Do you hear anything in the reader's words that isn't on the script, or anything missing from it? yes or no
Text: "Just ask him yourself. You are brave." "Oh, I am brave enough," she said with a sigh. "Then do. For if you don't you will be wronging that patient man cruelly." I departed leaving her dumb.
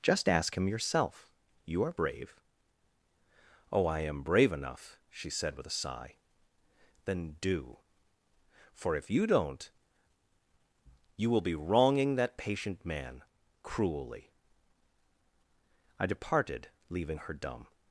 no